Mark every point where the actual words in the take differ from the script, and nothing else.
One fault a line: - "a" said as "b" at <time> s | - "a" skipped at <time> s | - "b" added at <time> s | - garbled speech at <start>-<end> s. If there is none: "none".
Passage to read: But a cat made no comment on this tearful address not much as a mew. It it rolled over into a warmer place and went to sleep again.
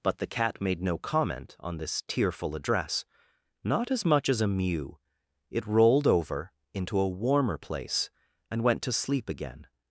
- "a" said as "the" at 0.2 s
- "as" added at 3.9 s
- "it" skipped at 5.7 s